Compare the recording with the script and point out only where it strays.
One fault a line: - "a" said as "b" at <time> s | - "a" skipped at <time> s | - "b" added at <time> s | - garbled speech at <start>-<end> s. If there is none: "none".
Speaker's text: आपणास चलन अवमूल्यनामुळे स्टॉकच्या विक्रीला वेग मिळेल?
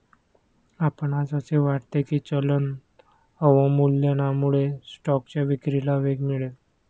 - "असे वाटते की" added at 1.3 s